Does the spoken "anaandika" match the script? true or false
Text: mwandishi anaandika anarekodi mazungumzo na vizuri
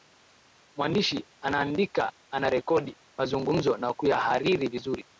true